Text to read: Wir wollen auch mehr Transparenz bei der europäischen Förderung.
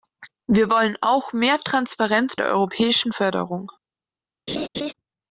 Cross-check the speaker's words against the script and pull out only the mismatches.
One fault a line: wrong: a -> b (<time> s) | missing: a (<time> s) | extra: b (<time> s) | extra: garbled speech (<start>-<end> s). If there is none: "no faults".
missing: bei (2.4 s)